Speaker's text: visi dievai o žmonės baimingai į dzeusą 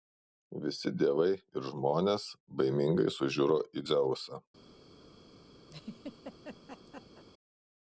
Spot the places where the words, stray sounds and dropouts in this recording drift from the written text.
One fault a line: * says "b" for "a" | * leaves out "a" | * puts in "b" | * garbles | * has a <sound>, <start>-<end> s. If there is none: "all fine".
* says "ir" for "o"
* puts in "sužiuro"
* has a laugh, 5.7-7.2 s